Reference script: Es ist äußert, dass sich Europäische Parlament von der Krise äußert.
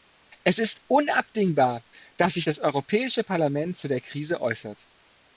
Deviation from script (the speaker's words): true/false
true